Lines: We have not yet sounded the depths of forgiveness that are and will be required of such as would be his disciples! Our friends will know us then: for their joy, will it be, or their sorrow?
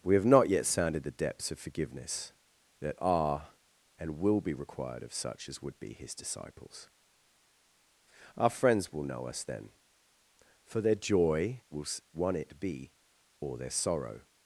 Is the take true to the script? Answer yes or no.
no